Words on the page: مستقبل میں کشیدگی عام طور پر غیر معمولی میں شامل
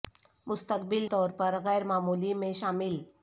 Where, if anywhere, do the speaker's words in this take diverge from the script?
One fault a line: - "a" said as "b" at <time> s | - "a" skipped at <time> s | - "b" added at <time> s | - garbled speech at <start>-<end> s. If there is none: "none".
- "میں کشیدگی عام" skipped at 1.1 s